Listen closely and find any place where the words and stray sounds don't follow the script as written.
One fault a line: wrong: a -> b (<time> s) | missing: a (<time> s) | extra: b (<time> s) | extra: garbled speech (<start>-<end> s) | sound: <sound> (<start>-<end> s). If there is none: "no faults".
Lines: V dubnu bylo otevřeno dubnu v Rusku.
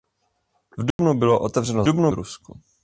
sound: dropout (0.9-1.0 s)